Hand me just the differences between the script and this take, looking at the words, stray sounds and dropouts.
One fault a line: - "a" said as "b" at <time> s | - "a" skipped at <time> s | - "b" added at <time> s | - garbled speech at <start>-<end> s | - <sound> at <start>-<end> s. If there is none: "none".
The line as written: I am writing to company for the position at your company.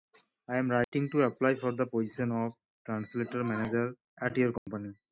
- dropout at 0.8-0.9 s
- "company" said as "apply" at 1.2 s
- "of Translator Manager" added at 2.3 s
- dropout at 4.6-4.7 s